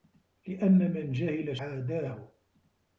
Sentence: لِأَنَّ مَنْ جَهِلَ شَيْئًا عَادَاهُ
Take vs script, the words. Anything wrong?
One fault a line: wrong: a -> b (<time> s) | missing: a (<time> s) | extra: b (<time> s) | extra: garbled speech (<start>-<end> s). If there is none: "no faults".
missing: شَيْئًا (1.6 s)